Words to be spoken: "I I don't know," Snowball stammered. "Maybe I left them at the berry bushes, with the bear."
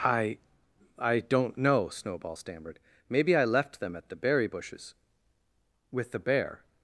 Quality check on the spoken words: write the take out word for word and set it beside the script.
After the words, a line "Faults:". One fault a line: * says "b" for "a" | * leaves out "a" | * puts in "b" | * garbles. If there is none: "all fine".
"I I don't know," Snowball stammered. "Maybe I left them at the berry bushes, with the bear."
Faults:
all fine